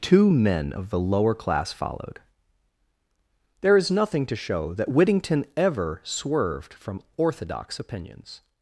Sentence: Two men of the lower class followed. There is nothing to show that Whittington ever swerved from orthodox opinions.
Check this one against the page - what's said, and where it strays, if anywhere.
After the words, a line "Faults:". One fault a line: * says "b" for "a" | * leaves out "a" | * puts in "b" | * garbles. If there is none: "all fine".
Two men of the lower class followed. There is nothing to show that Whittington ever swerved from orthodox opinions.
Faults:
all fine